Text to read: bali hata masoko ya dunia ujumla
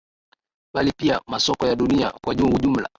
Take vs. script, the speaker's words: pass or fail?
fail